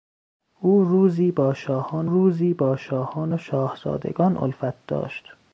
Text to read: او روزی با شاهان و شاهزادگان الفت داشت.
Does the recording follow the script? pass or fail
fail